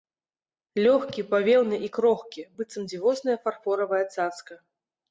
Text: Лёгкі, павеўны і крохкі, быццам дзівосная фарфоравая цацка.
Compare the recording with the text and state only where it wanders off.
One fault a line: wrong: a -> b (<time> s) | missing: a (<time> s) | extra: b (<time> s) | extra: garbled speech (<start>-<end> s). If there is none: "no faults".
no faults